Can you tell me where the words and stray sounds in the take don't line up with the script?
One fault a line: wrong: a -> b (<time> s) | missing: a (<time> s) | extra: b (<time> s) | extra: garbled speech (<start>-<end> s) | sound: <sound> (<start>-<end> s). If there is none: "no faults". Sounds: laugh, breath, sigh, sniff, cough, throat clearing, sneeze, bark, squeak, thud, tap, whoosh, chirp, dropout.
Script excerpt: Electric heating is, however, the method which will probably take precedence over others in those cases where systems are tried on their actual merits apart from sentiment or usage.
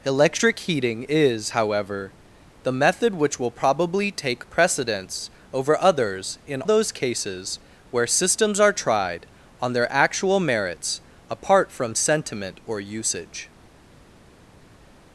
no faults